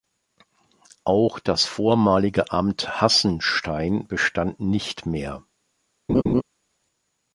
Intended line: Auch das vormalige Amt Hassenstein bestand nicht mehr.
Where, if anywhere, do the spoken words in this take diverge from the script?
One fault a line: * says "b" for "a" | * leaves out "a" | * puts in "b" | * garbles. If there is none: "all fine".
all fine